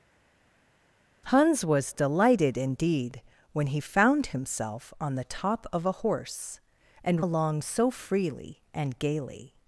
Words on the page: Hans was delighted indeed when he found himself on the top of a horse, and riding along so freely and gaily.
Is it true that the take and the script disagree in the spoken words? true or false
true